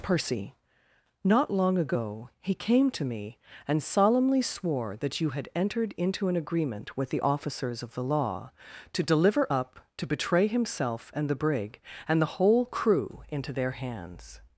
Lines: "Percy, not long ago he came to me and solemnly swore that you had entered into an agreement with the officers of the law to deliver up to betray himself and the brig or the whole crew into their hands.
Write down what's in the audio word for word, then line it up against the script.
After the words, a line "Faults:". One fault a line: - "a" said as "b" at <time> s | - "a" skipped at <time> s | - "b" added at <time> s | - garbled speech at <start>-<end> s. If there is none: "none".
"Percy, not long ago he came to me and solemnly swore that you had entered into an agreement with the officers of the law to deliver up to betray himself and the brig and the whole crew into their hands.
Faults:
- "or" said as "and" at 12.1 s